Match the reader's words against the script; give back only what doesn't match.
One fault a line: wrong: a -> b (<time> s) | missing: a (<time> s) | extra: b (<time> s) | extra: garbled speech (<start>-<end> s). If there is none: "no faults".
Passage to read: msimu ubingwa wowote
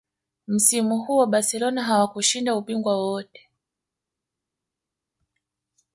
extra: huo barcelona hawakushinda (1.0 s)